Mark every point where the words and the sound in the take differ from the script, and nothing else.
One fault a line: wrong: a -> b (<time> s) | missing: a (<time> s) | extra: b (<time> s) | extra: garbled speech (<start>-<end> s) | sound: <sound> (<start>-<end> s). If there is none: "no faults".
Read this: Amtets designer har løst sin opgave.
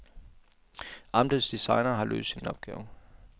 extra: sin (2.4 s)